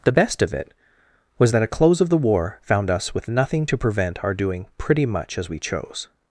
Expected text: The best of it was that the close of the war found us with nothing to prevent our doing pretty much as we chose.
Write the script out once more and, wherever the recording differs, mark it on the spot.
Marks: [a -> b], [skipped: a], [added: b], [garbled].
The best of it was that [the -> a] close of the war found us with nothing to prevent our doing pretty much as we chose.